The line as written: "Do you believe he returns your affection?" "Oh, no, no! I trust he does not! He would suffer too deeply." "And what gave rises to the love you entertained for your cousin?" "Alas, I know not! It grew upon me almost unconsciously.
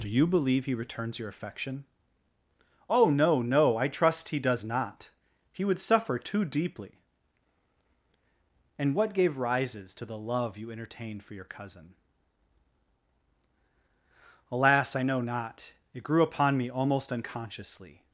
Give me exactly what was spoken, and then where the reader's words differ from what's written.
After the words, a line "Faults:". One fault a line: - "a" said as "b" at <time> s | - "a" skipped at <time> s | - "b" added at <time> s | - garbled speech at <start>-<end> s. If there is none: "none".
"Do you believe he returns your affection?" "Oh, no, no! I trust he does not! He would suffer too deeply." "And what gave rises to the love you entertained for your cousin?" "Alas, I know not! It grew upon me almost unconsciously.
Faults:
none